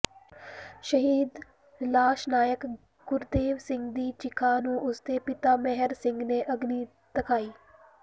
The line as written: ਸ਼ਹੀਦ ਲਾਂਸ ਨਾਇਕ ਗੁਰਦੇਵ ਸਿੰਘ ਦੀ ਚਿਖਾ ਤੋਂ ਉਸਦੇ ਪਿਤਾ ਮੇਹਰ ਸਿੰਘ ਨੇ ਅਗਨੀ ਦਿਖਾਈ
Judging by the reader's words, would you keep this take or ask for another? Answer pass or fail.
fail